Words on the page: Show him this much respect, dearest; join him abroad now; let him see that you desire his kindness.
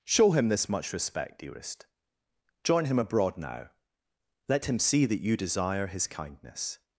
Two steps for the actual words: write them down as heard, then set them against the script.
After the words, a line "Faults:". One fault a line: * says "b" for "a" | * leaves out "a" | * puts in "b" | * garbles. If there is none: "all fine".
Show him this much respect, dearest; join him abroad now; let him see that you desire his kindness.
Faults:
all fine